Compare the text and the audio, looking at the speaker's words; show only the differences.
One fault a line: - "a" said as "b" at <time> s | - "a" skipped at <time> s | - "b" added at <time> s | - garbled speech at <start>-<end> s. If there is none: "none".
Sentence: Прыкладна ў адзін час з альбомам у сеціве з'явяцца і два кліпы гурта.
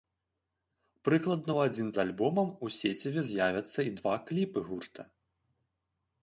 - "час" skipped at 1.9 s